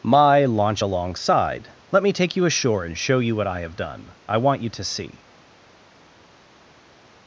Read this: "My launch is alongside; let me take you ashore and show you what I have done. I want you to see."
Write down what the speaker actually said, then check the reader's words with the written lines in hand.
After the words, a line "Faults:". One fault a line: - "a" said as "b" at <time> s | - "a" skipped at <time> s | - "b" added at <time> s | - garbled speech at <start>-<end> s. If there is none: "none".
"My launch alongside; let me take you ashore and show you what I have done. I want you to see."
Faults:
- "is" skipped at 0.8 s